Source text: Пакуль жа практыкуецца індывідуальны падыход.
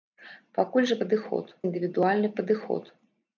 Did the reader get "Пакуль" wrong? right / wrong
right